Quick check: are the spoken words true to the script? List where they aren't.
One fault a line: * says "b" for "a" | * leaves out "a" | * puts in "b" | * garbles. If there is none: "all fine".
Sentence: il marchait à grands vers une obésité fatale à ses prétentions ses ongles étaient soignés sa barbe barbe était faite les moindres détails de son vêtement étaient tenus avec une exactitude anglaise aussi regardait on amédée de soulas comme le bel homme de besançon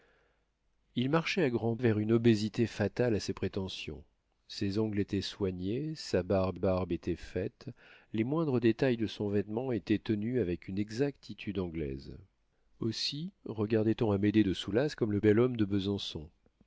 all fine